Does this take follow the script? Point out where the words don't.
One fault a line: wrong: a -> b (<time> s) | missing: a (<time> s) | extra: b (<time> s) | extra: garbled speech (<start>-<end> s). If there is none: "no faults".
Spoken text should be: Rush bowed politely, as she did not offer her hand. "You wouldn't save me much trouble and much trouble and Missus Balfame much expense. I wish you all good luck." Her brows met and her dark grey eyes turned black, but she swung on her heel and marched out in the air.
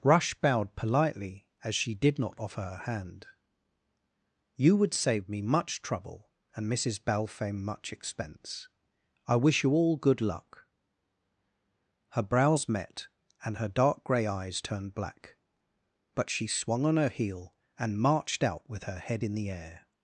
wrong: wouldn't -> would (4.8 s)
missing: much trouble and (6.7 s)
extra: with her head (18.7 s)